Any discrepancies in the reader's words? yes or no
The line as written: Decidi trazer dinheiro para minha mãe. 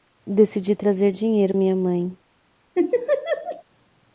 yes